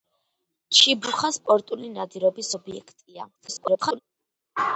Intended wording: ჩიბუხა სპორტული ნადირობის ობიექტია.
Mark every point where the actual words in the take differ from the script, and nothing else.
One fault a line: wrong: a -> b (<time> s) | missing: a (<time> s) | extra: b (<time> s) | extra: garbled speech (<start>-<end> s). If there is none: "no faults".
extra: garbled speech (3.4-4.0 s)